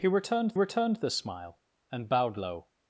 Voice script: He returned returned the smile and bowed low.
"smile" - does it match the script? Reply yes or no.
yes